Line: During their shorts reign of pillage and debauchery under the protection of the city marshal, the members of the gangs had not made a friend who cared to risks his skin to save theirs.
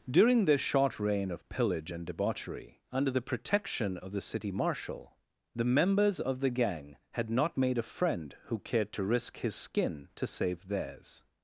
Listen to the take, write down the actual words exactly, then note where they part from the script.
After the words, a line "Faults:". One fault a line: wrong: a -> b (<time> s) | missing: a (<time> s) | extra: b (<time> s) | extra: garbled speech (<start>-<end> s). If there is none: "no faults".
During their short reign of pillage and debauchery under the protection of the city marshal, the members of the gang had not made a friend who cared to risk his skin to save theirs.
Faults:
wrong: shorts -> short (0.6 s)
wrong: gangs -> gang (6.5 s)
wrong: risks -> risk (9.0 s)